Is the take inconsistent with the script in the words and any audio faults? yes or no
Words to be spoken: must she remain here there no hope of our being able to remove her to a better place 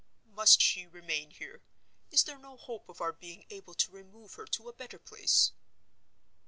yes